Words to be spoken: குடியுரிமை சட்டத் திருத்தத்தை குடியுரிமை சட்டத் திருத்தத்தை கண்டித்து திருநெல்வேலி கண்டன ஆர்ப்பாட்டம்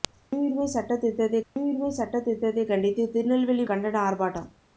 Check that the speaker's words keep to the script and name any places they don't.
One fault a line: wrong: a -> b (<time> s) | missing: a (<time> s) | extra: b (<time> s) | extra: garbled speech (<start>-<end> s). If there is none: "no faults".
no faults